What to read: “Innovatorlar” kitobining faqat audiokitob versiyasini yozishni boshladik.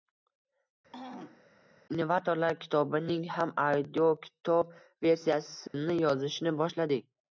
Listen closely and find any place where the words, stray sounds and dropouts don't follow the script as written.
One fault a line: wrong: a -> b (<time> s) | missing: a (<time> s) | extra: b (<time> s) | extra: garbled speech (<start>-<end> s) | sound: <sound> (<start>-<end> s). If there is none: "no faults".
sound: throat clearing (0.9-1.5 s)
wrong: faqat -> ham (3.4 s)
sound: dropout (5.7-5.7 s)